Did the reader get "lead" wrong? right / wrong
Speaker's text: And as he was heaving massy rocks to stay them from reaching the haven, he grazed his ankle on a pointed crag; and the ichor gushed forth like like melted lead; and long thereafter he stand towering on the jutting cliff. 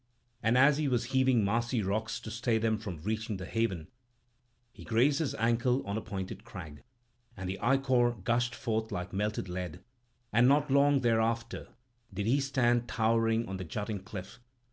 right